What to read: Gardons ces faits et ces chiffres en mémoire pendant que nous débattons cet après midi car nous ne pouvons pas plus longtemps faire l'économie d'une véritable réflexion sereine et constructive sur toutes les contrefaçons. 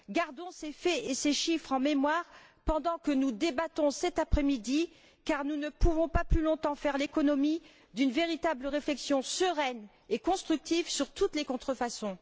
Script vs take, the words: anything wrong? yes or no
no